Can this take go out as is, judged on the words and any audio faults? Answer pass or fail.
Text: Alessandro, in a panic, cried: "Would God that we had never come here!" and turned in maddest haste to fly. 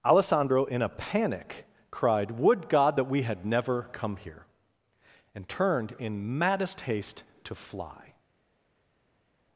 pass